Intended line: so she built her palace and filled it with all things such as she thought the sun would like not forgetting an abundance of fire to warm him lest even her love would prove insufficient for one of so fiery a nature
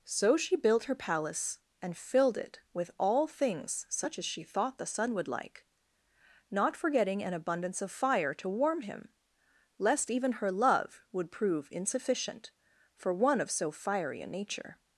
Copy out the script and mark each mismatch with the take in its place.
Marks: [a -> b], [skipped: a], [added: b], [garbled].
so she built her palace and filled it with all things such as she thought the sun would like not forgetting an abundance of fire to warm him lest even her love would prove insufficient for one of so fiery a nature